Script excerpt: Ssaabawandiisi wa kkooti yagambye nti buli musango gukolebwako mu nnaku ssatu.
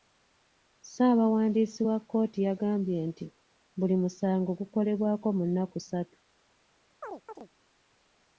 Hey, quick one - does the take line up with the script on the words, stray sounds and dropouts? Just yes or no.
no